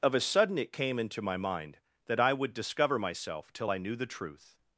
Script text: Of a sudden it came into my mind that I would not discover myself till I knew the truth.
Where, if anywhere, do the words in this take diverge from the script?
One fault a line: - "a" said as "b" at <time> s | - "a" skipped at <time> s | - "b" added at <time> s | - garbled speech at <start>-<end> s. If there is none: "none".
- "not" skipped at 2.5 s